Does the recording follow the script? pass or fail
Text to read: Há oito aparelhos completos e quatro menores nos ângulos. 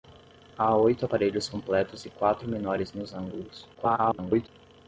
fail